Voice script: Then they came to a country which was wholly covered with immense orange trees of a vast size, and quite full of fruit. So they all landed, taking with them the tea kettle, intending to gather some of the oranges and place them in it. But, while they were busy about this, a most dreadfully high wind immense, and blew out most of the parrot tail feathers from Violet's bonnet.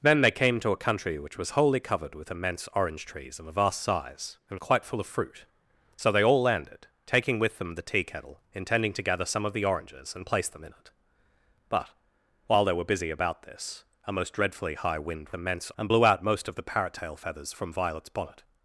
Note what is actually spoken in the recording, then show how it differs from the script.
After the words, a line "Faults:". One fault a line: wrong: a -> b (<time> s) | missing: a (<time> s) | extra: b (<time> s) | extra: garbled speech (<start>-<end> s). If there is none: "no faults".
Then they came to a country which was wholly covered with immense orange trees of a vast size, and quite full of fruit. So they all landed, taking with them the tea kettle, intending to gather some of the oranges and place them in it. But, while they were busy about this, a most dreadfully high wind immense, and blew out most of the parrot tail feathers from Violet's bonnet.
Faults:
no faults